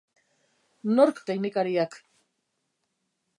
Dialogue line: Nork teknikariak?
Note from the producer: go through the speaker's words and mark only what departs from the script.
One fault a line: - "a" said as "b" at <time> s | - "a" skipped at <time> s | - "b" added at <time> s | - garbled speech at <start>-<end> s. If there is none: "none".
none